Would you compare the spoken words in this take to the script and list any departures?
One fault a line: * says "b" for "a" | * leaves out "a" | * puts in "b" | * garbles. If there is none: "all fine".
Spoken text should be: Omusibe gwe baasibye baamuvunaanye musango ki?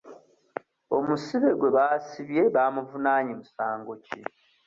all fine